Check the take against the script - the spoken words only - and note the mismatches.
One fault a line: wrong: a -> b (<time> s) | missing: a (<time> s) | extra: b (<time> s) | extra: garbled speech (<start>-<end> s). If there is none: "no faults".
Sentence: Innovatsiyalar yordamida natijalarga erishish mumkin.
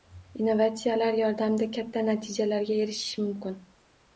extra: katta (1.8 s)